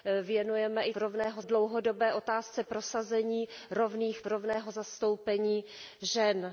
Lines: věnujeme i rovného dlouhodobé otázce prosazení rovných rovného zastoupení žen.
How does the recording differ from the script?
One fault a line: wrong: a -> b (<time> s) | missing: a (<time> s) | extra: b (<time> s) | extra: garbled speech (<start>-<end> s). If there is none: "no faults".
no faults